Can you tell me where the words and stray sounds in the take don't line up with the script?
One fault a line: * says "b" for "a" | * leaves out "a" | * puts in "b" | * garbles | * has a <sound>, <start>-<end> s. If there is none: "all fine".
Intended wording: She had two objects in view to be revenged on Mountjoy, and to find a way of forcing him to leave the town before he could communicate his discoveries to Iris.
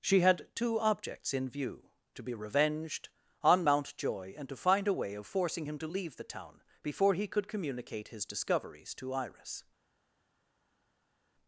all fine